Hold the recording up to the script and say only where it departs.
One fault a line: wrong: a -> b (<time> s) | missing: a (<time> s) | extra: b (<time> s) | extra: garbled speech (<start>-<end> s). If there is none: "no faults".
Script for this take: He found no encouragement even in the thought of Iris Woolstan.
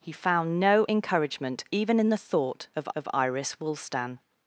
extra: of (2.9 s)